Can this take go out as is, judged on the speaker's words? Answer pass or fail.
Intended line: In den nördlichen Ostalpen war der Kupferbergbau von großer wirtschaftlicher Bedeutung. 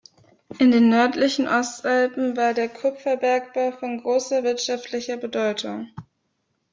pass